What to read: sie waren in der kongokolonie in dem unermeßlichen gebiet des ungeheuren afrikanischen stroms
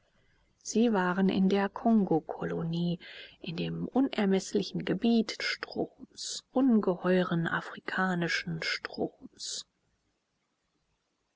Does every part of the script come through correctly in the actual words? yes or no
no